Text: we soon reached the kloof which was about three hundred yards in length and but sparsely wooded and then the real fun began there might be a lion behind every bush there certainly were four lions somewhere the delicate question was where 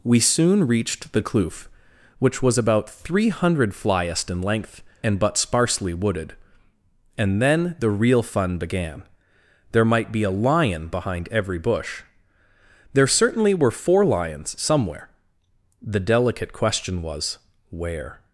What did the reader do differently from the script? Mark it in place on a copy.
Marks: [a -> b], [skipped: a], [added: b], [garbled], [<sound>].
we soon reached the kloof which was about three hundred [yards -> flyest] in length and but sparsely wooded and then the real fun began there might be a lion behind every bush there certainly were four lions somewhere the delicate question was where